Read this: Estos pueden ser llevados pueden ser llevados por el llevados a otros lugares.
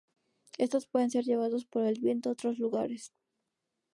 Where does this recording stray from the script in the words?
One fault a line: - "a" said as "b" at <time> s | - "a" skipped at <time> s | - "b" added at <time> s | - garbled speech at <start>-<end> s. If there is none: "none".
- "pueden ser llevados" skipped at 1.6 s
- "llevados" said as "viento" at 2.0 s